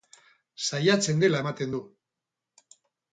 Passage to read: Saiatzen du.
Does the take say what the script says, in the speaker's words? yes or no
no